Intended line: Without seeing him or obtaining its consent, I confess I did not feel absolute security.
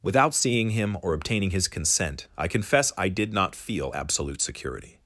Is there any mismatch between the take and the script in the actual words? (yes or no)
yes